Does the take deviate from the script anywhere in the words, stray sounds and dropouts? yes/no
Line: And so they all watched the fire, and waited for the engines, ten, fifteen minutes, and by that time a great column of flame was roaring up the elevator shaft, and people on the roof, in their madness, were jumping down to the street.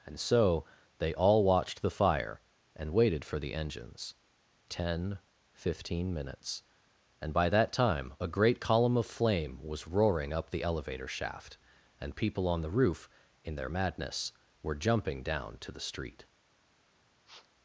yes